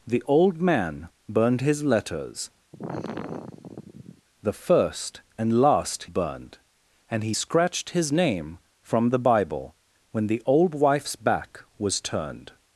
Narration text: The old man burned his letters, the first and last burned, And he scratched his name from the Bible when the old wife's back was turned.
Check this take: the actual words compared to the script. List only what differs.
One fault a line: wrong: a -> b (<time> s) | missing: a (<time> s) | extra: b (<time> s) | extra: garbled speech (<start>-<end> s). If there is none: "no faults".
no faults